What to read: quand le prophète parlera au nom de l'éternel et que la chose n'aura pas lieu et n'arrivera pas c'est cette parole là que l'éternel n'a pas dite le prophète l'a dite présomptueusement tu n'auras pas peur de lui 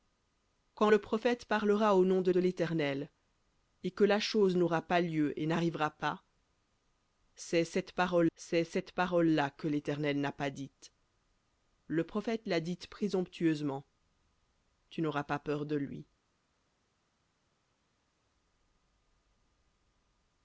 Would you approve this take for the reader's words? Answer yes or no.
no